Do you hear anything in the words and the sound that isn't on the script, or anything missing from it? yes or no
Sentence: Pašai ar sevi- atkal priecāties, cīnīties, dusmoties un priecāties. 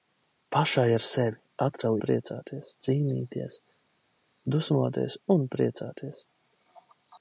no